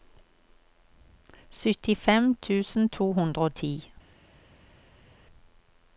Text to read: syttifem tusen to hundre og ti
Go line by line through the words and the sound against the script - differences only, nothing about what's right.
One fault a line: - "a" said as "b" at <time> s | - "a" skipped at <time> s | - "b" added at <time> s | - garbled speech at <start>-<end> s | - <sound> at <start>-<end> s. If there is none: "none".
none